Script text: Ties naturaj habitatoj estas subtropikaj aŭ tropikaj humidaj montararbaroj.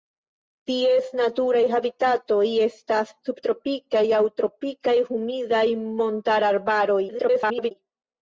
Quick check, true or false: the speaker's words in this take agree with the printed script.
false